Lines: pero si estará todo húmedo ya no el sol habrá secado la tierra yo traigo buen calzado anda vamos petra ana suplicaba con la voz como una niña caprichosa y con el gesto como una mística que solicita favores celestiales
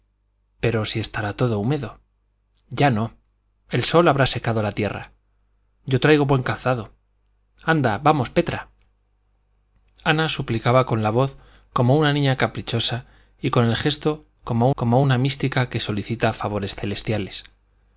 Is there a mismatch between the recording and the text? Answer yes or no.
yes